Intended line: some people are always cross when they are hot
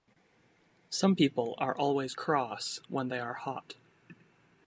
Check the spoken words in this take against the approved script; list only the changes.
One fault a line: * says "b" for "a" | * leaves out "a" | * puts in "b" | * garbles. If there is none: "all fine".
all fine